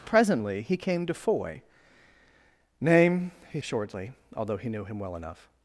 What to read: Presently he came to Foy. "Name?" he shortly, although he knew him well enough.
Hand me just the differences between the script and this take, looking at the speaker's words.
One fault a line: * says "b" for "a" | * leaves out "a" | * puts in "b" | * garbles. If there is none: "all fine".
all fine